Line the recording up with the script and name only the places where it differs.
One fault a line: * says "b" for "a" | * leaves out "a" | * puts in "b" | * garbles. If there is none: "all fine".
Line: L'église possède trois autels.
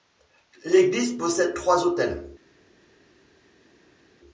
all fine